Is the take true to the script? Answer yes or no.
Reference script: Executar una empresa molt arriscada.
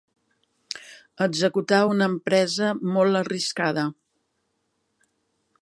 yes